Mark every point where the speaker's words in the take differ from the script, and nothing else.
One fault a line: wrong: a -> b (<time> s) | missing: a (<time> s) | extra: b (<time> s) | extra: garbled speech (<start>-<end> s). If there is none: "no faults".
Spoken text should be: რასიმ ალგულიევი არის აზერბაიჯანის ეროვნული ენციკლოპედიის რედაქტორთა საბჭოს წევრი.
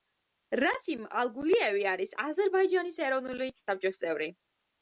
missing: ენციკლოპედიის რედაქტორთა (3.5 s)